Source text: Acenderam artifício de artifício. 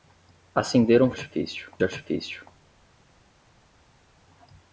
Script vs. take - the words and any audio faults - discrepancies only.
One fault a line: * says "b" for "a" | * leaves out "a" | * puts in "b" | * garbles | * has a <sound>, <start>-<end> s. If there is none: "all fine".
all fine